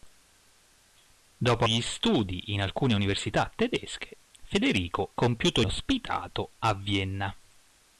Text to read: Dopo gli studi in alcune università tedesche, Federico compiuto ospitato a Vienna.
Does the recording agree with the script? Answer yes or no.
yes